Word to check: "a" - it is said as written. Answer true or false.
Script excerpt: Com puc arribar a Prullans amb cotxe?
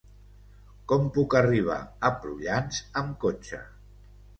true